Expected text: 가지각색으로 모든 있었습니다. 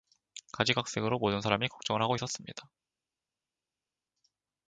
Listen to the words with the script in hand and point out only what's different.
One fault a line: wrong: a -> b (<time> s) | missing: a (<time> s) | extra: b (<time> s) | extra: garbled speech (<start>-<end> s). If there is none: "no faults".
extra: 사람이 걱정을 하고 (1.4 s)